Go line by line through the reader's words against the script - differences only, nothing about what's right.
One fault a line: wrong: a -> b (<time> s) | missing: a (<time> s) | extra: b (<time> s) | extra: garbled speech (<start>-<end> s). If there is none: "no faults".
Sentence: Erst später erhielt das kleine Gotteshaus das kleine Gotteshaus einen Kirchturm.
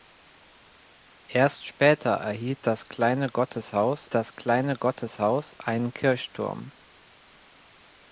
no faults